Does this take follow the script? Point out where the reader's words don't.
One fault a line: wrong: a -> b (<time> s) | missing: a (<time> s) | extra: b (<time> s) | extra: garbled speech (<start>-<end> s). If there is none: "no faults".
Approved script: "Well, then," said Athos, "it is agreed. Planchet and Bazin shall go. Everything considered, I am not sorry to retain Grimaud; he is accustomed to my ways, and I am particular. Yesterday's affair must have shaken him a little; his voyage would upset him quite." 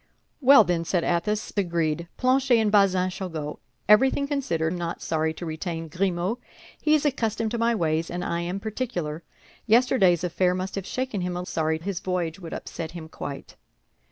missing: it is (1.5 s)
missing: I (4.7 s)
wrong: little -> sorry (11.5 s)